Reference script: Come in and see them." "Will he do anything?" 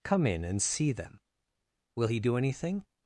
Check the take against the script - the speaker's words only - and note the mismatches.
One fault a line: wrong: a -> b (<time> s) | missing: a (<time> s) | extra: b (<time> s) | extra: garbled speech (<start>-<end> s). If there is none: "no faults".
no faults